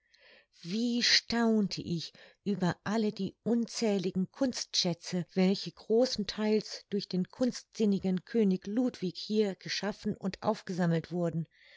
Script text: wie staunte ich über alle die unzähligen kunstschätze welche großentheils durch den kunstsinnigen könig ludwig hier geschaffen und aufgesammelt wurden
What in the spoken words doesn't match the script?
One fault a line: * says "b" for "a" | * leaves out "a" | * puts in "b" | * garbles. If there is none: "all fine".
all fine